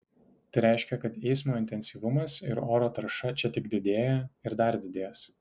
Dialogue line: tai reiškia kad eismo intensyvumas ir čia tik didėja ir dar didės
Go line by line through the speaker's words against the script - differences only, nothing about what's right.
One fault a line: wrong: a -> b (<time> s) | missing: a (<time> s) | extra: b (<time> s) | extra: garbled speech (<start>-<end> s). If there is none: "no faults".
extra: oro tarša (2.8 s)